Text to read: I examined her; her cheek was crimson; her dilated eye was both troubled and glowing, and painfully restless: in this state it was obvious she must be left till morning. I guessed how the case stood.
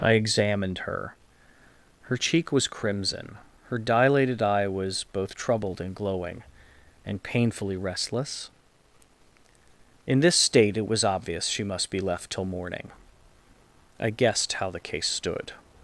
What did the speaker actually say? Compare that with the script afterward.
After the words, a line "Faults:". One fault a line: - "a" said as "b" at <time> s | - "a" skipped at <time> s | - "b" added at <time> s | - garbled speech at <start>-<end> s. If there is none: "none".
I examined her; her cheek was crimson; her dilated eye was both troubled and glowing, and painfully restless: in this state it was obvious she must be left till morning. I guessed how the case stood.
Faults:
none